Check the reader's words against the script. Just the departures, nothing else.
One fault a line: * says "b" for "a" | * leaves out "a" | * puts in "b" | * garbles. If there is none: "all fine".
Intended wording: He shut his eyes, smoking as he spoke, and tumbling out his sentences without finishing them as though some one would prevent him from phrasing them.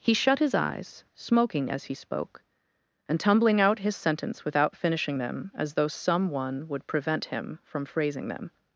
* says "sentence" for "sentences"